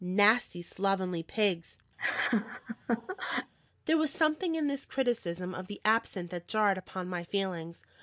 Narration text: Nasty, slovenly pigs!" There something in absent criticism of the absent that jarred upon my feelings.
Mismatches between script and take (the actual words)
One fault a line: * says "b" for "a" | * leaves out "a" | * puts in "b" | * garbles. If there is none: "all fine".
* puts in "was"
* says "this" for "absent"